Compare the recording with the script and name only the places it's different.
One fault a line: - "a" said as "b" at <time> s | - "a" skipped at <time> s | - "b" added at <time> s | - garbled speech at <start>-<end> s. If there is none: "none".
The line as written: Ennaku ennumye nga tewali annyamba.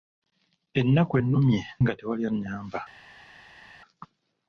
none